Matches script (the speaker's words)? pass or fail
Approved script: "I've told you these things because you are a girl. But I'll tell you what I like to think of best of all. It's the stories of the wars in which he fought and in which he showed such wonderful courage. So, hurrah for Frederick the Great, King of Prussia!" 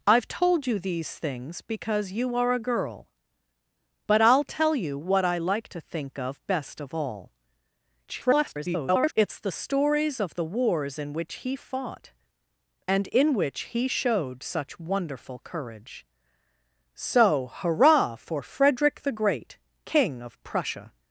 fail